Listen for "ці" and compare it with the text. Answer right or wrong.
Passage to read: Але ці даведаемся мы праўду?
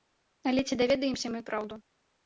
right